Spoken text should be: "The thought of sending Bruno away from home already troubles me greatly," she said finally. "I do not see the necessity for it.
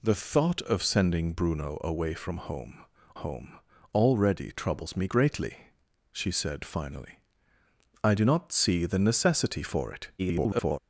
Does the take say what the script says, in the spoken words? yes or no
no